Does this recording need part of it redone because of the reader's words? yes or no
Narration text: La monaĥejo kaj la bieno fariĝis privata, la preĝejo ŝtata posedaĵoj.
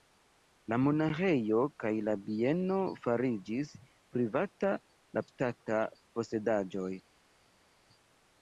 yes